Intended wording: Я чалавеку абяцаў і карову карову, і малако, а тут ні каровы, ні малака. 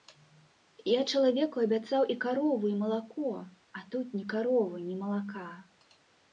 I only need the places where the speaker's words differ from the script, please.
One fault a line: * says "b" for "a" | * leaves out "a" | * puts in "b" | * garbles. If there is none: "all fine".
* leaves out "карову"